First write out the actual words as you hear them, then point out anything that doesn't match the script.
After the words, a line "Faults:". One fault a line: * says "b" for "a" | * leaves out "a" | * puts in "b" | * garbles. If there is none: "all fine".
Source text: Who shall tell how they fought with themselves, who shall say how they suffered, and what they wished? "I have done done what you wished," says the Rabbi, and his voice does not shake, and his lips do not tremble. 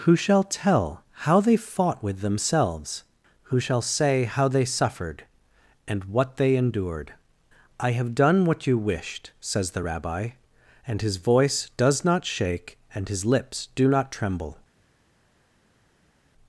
Who shall tell how they fought with themselves, who shall say how they suffered, and what they endured? "I have done what you wished," says the Rabbi, and his voice does not shake, and his lips do not tremble.
Faults:
* says "endured" for "wished"
* leaves out "done"